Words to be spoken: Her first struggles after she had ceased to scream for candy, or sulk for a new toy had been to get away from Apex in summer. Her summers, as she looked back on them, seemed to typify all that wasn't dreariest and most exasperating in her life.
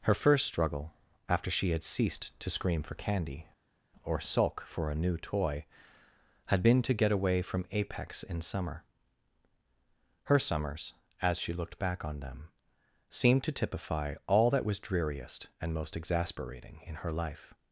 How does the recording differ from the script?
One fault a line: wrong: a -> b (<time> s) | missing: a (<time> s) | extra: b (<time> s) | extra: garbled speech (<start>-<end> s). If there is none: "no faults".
wrong: struggles -> struggle (0.5 s)
wrong: wasn't -> was (14.7 s)